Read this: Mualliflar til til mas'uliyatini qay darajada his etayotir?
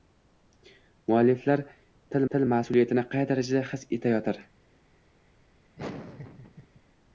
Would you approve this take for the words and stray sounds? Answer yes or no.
no